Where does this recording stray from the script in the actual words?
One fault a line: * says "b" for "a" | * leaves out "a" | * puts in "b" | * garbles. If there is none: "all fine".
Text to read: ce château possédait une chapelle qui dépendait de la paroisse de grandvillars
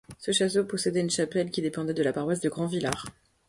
all fine